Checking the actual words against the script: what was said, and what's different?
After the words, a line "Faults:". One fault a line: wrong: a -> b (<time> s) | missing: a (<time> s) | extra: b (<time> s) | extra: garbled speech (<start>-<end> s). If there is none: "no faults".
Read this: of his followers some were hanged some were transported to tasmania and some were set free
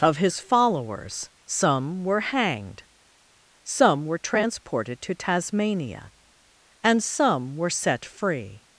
of his followers some were hanged some were transported to tasmania and some were set free
Faults:
no faults